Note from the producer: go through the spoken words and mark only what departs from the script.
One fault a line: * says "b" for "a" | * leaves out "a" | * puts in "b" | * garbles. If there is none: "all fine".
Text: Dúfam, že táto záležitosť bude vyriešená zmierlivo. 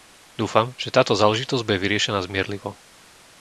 all fine